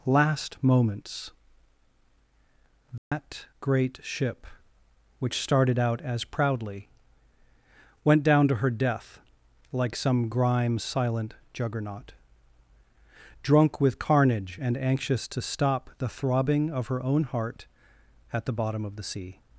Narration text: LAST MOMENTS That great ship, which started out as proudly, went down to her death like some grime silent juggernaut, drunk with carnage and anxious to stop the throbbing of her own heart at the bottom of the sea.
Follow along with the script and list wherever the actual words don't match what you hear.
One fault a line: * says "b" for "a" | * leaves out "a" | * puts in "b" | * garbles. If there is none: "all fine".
all fine